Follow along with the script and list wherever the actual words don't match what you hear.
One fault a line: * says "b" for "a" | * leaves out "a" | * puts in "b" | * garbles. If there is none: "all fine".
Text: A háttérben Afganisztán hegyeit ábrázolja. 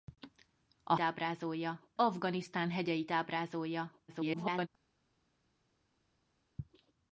* says "ábrázolja" for "háttérben"
* garbles